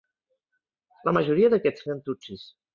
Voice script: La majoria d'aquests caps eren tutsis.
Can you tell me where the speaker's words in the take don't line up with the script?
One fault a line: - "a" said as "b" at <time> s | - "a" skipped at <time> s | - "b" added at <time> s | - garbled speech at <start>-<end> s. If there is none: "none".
- "caps" skipped at 1.9 s